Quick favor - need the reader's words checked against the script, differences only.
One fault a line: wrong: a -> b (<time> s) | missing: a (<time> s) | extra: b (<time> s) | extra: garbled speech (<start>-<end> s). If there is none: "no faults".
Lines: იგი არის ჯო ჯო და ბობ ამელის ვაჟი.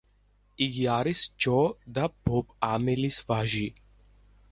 missing: ჯო (1.6 s)